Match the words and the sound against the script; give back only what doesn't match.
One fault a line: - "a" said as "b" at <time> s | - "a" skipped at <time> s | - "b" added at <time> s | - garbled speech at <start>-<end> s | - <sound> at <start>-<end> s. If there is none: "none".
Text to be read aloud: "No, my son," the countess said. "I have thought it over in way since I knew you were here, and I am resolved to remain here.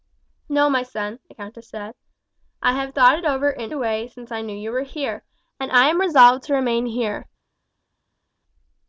none